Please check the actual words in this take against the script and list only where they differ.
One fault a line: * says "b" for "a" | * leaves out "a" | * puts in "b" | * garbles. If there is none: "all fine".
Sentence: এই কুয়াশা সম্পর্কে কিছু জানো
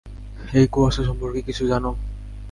all fine